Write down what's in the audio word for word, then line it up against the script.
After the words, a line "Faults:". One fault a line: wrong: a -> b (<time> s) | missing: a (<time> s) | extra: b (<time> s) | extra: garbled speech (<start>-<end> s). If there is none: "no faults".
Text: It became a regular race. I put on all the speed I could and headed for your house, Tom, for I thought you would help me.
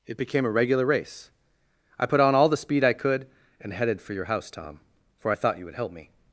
It became a regular race. I put on all the speed I could and headed for your house, Tom, for I thought you would help me.
Faults:
no faults